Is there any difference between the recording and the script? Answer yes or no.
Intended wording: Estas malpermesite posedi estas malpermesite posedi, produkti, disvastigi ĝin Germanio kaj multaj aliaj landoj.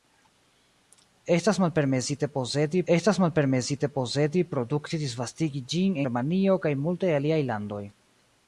no